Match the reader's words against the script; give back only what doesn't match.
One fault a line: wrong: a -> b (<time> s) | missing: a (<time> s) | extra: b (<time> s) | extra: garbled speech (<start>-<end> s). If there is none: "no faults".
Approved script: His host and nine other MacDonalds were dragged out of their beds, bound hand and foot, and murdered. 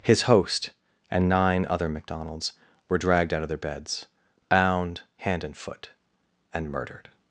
no faults